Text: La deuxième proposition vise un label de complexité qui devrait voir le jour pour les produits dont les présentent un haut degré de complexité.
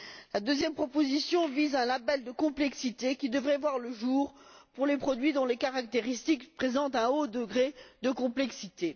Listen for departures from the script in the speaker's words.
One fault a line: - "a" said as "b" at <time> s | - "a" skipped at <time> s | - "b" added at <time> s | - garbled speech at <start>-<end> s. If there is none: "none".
- "caractéristiques" added at 5.6 s